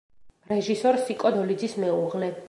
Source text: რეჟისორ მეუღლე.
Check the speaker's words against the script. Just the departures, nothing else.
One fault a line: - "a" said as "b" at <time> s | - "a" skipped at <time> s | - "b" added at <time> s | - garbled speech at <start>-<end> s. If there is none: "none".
- "სიკო დოლიძის" added at 1.1 s